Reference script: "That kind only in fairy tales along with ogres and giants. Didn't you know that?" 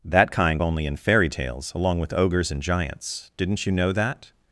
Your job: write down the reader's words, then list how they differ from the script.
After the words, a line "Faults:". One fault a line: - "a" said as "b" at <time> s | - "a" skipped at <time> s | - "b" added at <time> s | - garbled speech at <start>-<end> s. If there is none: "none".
"That kind only in fairy tales along with ogres and giants. Didn't you know that?"
Faults:
none